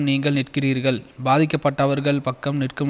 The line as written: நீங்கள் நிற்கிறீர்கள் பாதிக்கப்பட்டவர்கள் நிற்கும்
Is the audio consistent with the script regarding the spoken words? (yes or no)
no